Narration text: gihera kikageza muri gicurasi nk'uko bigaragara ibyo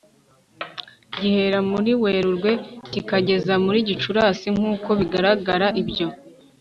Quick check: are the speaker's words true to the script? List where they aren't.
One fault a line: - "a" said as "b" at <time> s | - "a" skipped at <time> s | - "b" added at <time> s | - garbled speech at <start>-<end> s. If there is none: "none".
- "muri werurwe" added at 1.7 s